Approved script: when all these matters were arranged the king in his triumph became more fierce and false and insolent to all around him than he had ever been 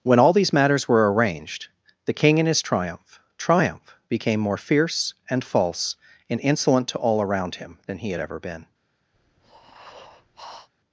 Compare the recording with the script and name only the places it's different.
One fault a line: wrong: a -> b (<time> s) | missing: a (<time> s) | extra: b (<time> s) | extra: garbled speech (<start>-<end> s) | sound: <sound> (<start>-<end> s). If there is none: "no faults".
extra: triumph (3.4 s)
sound: breath (9.1-10.7 s)